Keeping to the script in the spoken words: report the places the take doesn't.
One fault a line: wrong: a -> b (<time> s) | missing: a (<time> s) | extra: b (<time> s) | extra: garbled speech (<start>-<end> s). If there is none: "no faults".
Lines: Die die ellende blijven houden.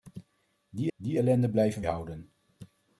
no faults